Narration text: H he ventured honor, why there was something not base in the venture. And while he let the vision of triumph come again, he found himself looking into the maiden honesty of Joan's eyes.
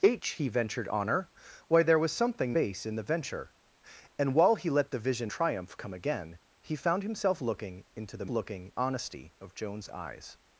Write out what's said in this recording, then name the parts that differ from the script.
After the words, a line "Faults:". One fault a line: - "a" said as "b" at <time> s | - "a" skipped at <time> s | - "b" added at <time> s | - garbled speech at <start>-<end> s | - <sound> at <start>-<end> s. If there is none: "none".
H he ventured honor, why there was something base in the venture. And while he let the vision triumph come again, he found himself looking into the looking honesty of Joan's eyes.
Faults:
- "not" skipped at 2.6 s
- "of" skipped at 5.3 s
- "maiden" said as "looking" at 8.3 s